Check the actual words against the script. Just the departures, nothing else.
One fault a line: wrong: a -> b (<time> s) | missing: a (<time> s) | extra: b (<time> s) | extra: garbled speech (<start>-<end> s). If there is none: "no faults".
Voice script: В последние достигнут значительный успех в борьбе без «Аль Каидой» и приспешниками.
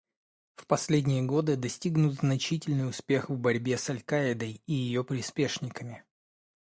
extra: годы (1.2 s)
wrong: без -> с (3.8 s)
extra: ее (4.7 s)